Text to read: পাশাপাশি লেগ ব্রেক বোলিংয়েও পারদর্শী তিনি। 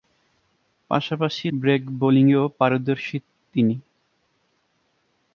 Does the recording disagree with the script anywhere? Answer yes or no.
yes